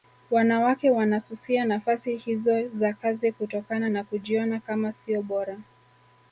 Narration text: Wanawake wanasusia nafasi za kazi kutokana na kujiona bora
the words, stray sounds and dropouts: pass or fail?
fail